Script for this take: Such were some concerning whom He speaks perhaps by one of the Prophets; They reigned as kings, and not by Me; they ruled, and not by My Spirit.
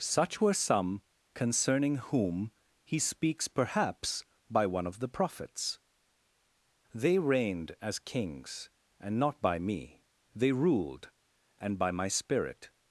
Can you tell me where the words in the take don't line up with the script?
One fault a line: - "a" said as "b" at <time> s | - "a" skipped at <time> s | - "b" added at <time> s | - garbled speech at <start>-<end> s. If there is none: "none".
- "not" skipped at 11.8 s